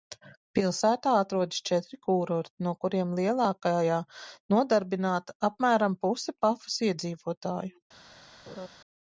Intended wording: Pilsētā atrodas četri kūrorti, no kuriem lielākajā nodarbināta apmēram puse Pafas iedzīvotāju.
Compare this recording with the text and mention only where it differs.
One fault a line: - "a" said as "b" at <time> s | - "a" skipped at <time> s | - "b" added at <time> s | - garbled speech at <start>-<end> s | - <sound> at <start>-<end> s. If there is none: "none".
- laugh at 8.5-8.7 s